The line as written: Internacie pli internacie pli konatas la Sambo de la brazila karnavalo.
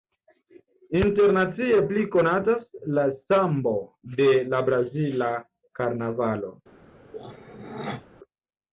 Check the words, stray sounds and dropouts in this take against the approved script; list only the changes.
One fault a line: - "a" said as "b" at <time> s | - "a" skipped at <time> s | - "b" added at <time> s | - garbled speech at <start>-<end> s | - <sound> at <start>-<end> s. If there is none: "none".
- "internacie pli" skipped at 2.1 s
- throat clearing at 7.1-8.1 s